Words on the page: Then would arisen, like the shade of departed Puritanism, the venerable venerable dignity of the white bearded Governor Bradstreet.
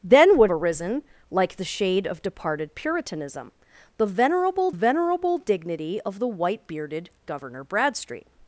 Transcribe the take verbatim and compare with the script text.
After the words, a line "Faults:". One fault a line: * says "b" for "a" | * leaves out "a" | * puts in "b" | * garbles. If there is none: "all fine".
Then would arisen, like the shade of departed Puritanism, the venerable venerable dignity of the white bearded Governor Bradstreet.
Faults:
all fine